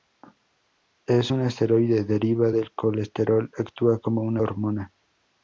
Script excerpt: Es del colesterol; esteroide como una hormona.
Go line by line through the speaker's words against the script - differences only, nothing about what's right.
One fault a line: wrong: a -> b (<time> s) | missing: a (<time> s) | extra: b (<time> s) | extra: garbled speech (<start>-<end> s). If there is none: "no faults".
extra: un esteroide deriva (1.3 s)
wrong: esteroide -> actúa (3.6 s)